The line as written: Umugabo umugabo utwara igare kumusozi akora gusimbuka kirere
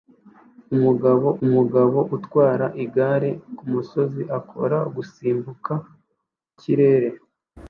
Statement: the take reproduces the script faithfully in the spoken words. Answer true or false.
true